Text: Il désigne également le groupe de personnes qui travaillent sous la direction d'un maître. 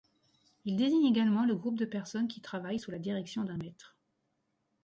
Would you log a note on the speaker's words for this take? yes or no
no